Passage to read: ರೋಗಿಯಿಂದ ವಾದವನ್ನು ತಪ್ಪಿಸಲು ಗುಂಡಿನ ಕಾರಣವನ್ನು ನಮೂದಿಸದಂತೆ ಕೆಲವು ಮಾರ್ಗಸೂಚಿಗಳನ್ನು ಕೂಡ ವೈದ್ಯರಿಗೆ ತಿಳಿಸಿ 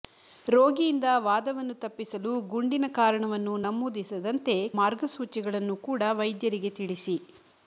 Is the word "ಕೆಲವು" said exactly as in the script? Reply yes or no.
no